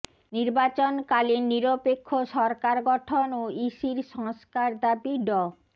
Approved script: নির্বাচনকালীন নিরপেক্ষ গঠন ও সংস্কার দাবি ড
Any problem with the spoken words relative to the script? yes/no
yes